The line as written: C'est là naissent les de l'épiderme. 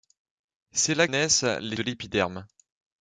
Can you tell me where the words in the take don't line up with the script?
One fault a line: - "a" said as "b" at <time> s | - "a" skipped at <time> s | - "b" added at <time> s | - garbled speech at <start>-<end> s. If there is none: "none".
none